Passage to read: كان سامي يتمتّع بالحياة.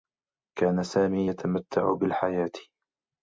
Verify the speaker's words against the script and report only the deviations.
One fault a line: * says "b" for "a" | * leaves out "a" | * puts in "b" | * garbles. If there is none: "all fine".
all fine